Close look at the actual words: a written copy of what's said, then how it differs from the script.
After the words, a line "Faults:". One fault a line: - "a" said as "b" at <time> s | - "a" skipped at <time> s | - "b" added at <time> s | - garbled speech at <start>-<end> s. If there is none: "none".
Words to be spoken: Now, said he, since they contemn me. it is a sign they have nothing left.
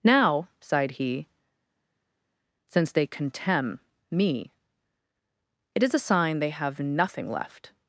Now, sighed he, since they contemn me. it is a sign they have nothing left.
Faults:
- "said" said as "sighed" at 0.6 s